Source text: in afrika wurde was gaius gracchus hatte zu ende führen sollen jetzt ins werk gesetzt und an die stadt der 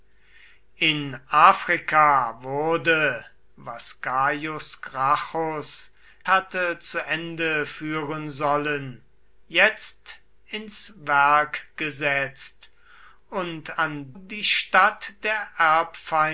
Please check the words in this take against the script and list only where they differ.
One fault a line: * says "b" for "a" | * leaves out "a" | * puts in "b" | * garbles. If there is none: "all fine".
all fine